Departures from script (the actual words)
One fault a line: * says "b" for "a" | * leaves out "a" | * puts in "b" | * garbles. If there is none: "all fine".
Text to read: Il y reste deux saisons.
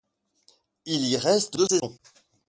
all fine